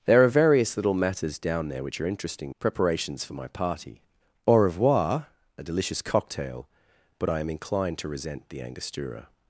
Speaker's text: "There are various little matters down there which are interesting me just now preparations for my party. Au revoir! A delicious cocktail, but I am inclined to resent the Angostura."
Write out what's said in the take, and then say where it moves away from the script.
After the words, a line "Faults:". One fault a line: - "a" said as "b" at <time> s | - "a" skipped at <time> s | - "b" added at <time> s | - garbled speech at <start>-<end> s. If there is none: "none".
"There are various little matters down there which are interesting preparations for my party. Au revoir! A delicious cocktail, but I am inclined to resent the Angostura."
Faults:
- "me just now" skipped at 2.5 s